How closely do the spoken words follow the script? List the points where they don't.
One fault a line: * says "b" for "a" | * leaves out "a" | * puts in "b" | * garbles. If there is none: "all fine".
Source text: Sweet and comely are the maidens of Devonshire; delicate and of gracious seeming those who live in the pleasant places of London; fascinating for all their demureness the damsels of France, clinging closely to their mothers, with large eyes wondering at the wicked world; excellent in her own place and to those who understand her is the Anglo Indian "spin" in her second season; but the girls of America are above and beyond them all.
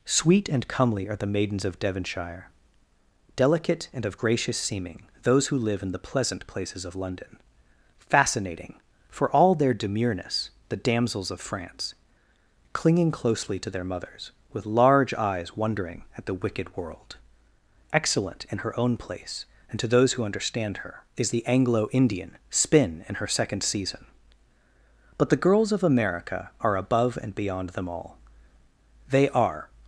* puts in "They are"